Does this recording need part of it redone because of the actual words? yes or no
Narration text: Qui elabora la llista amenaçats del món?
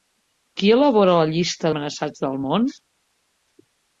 no